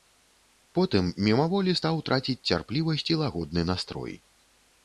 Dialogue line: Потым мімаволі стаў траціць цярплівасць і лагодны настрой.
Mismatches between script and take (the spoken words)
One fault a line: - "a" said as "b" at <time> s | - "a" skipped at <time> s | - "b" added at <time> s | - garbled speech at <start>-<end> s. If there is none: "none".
none